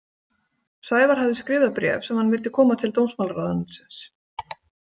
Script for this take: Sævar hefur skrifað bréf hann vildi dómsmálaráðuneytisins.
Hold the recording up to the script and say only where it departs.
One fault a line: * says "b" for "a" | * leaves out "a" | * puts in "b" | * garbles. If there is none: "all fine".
* says "hafði" for "hefur"
* puts in "sem"
* puts in "koma til"